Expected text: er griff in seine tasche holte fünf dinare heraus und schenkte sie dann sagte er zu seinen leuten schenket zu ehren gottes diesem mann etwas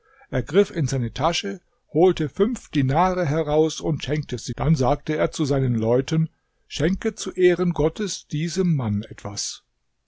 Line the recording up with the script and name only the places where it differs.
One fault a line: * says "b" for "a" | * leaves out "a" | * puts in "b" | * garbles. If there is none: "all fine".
all fine